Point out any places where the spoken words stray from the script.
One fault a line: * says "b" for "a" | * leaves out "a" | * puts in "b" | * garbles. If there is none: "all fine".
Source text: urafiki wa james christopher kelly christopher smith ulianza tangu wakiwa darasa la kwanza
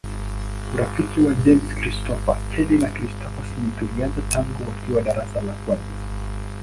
* puts in "na"